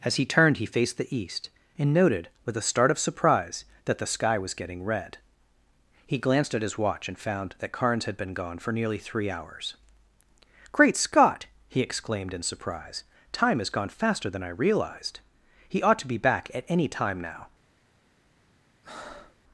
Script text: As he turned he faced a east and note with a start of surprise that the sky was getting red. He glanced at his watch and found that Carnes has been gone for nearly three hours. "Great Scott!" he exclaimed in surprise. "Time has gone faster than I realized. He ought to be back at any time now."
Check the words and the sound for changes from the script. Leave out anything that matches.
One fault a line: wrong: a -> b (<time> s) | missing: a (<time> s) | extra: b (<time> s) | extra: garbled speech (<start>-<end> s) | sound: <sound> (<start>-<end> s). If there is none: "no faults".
wrong: a -> the (1.0 s)
wrong: note -> noted (1.9 s)
wrong: has -> had (8.1 s)
sound: breath (18.8-19.4 s)